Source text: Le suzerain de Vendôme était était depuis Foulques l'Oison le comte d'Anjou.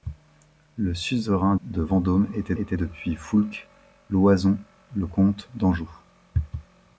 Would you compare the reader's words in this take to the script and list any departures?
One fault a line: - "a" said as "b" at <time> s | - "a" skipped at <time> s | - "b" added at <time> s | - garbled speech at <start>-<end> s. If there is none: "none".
none